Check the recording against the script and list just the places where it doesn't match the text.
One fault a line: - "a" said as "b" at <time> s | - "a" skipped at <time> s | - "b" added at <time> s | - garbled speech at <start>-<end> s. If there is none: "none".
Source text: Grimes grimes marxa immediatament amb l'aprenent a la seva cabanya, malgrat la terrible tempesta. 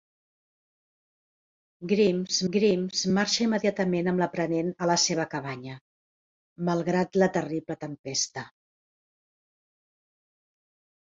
none